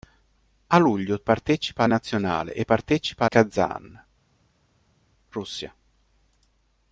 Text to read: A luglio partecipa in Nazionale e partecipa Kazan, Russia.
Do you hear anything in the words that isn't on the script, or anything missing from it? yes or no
no